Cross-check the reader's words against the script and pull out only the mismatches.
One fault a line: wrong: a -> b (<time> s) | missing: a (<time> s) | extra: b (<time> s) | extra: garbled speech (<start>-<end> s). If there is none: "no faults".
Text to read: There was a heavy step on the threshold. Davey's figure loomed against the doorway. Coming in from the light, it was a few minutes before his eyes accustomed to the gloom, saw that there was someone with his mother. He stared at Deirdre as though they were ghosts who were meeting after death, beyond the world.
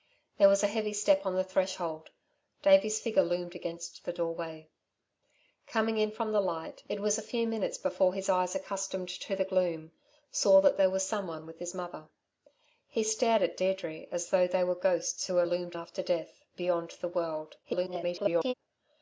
wrong: meeting -> loomed (15.4 s)
extra: garbled speech (17.6-18.5 s)